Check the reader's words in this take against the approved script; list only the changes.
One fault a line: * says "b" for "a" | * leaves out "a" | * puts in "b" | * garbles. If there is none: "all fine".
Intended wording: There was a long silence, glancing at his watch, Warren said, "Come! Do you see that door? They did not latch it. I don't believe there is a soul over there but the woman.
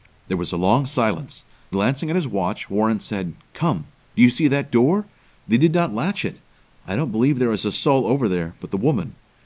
all fine